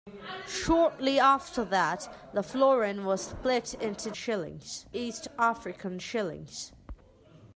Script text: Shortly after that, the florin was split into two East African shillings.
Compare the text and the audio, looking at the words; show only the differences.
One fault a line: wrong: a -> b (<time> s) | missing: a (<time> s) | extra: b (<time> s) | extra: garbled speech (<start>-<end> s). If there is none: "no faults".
wrong: two -> shillings (4.1 s)